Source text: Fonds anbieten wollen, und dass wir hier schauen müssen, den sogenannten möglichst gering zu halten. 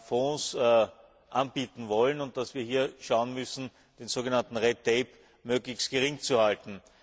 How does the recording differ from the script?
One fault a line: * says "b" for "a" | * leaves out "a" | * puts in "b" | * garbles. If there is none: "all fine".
all fine